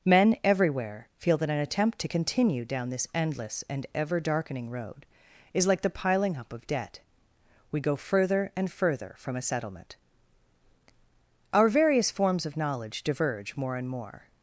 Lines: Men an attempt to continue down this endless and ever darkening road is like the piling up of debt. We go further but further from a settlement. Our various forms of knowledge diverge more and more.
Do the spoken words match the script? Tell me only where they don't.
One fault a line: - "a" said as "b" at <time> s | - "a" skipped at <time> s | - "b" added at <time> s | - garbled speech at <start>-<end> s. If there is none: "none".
- "everywhere feel that" added at 0.4 s
- "but" said as "and" at 8.5 s